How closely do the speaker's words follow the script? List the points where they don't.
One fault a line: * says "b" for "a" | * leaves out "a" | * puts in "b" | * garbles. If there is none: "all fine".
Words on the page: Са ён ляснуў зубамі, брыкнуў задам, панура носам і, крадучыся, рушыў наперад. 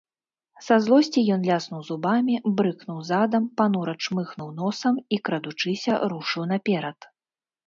* puts in "злосці"
* puts in "чмыхнуў"